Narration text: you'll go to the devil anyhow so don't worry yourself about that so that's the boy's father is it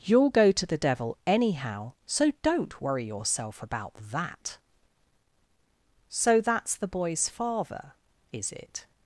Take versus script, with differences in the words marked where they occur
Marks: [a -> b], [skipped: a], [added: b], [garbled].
you'll go to the devil anyhow so don't worry yourself about that so that's the boy's father is it